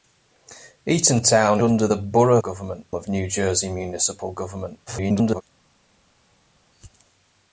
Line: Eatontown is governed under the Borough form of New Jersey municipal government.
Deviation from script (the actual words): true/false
true